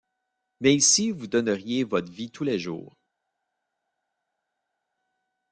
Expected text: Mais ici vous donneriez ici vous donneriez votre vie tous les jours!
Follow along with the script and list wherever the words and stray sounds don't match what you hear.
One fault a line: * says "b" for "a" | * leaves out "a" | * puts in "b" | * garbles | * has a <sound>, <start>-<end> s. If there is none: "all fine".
* leaves out "ici vous donneriez"